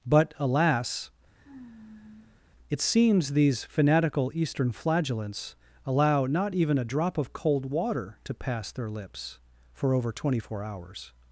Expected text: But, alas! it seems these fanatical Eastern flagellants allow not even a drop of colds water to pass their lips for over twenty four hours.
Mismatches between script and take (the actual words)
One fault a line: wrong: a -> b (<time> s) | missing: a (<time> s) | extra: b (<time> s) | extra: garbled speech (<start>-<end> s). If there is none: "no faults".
wrong: colds -> cold (7.3 s)